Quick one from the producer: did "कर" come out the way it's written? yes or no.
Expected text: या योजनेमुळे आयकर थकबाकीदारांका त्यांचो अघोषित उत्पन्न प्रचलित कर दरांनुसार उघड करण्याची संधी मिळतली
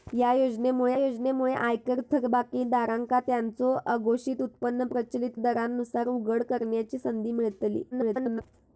no